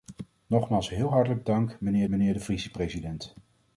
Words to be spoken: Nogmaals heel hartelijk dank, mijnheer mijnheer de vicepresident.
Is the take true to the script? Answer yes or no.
yes